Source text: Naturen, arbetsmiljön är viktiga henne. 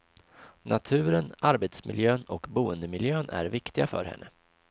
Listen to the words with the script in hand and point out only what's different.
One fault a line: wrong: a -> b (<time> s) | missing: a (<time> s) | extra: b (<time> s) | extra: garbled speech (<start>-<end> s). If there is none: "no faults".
extra: och boendemiljön (2.2 s)
extra: för (3.8 s)